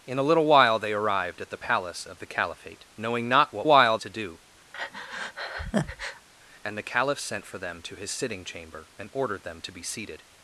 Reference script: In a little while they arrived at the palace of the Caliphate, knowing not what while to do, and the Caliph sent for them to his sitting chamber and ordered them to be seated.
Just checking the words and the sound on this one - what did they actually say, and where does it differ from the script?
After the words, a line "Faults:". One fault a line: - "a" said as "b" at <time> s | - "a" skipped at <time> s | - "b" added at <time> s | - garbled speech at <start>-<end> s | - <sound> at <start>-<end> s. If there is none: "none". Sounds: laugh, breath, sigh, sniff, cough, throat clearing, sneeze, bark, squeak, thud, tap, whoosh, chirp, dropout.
In a little while they arrived at the palace of the Caliphate, knowing not what while to do, and the Caliph sent for them to his sitting chamber and ordered them to be seated.
Faults:
- breath at 4.7-6.3 s